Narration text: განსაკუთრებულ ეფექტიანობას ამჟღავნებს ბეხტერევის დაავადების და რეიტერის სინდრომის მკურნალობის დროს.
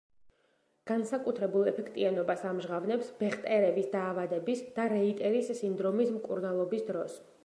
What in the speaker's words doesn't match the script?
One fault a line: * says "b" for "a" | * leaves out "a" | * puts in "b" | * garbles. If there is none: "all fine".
all fine